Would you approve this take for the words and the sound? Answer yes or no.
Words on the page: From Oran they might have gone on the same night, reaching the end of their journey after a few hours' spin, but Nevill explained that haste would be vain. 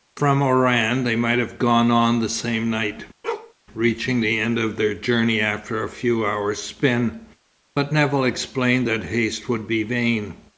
no